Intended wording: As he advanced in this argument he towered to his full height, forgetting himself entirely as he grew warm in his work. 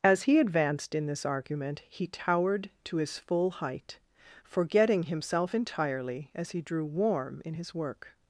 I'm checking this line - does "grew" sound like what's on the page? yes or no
no